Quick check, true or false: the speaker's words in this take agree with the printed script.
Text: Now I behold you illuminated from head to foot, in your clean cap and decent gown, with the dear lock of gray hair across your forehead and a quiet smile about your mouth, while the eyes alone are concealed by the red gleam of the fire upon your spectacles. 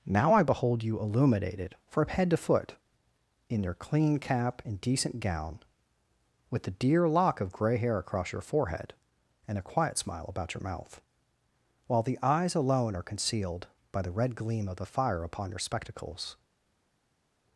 true